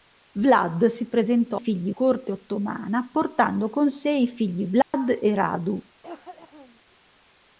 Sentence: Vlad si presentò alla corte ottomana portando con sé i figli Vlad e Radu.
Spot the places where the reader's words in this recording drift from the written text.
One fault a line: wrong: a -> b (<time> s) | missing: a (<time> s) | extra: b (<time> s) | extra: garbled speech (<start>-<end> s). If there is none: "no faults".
wrong: alla -> figli (1.5 s)